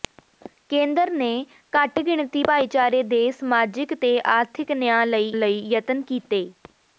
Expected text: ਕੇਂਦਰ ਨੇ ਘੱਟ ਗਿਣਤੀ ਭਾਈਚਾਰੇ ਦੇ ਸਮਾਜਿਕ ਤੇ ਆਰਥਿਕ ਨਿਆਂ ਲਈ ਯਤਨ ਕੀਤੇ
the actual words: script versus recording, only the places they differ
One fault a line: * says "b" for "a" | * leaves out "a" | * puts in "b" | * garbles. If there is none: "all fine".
* puts in "ਲਈ"